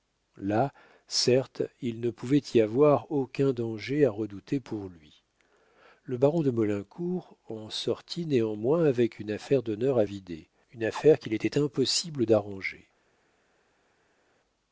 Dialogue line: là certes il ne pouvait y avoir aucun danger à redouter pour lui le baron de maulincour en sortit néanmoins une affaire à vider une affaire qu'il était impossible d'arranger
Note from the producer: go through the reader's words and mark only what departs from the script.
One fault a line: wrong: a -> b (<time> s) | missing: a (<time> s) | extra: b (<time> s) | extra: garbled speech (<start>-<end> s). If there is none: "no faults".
extra: avec (8.8 s)
extra: d'honneur (9.6 s)